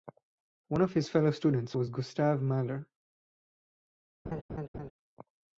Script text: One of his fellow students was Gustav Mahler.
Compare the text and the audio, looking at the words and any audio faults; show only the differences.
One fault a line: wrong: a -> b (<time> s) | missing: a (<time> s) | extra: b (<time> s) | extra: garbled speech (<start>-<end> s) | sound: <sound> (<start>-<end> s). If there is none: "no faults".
sound: laugh (4.3-4.9 s)